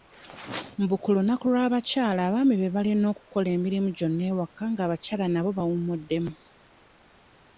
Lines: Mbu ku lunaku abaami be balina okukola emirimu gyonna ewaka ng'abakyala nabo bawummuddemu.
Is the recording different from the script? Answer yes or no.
yes